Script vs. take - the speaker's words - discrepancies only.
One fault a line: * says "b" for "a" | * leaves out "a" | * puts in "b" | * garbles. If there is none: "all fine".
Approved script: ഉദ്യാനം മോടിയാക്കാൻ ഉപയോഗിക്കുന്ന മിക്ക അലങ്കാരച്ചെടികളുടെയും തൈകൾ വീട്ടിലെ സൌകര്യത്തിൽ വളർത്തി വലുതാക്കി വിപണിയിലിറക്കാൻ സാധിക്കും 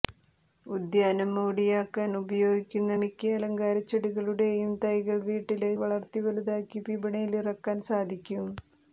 * leaves out "സൌകര്യത്തിൽ"